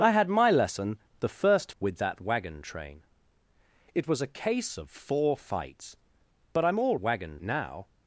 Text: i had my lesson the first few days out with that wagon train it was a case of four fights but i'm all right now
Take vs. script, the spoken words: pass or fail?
fail